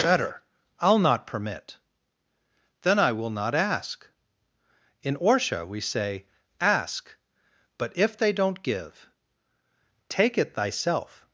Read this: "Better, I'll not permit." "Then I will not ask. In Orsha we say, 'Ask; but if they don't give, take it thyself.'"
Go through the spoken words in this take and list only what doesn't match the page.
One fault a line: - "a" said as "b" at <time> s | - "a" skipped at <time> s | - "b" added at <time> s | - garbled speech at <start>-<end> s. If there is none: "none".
none